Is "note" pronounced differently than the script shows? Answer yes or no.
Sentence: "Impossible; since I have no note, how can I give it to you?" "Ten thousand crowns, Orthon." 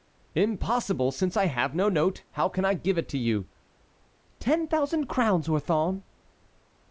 no